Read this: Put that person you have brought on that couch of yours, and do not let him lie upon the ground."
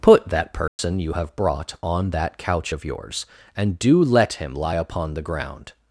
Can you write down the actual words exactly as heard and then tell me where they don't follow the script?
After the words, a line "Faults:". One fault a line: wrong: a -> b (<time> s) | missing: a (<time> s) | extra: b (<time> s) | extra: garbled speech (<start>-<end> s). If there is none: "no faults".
Put that person you have brought on that couch of yours, and do let him lie upon the ground."
Faults:
missing: not (4.0 s)